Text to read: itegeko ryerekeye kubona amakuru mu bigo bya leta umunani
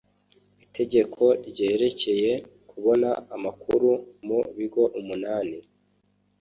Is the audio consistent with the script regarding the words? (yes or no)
no